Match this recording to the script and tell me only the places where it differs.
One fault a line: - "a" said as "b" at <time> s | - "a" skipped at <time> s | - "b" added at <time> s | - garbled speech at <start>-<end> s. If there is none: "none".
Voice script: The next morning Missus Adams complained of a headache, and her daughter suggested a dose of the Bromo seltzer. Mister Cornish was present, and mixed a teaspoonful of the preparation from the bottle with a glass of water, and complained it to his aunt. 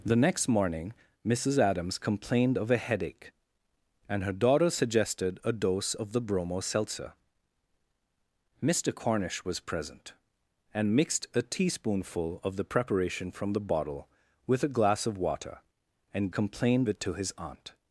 none